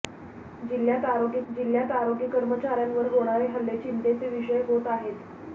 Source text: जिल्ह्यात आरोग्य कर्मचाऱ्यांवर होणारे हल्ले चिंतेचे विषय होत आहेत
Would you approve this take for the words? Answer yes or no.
no